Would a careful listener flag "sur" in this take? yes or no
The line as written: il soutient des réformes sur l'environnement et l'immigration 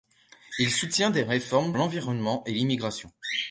yes